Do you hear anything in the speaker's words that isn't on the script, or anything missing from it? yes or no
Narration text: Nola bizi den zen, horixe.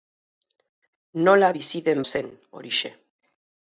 no